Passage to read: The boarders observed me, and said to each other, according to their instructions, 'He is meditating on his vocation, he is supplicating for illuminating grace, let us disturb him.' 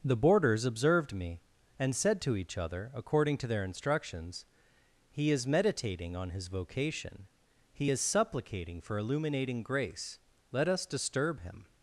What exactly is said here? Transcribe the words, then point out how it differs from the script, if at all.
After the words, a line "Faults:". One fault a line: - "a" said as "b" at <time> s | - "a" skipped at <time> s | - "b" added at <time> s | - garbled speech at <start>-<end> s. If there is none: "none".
The boarders observed me, and said to each other, according to their instructions, 'He is meditating on his vocation, he is supplicating for illuminating grace, let us disturb him.'
Faults:
none